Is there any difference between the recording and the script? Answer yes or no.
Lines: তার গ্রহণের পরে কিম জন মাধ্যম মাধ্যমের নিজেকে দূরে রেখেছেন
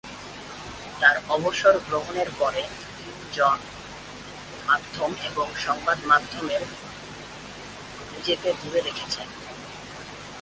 yes